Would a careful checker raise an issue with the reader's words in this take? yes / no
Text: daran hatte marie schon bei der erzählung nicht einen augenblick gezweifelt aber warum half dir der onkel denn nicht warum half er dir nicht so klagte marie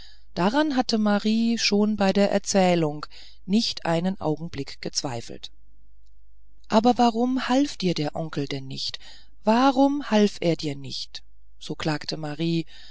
no